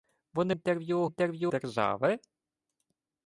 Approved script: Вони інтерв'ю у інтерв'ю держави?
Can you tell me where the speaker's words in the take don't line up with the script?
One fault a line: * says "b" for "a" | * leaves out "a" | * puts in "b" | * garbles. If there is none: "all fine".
all fine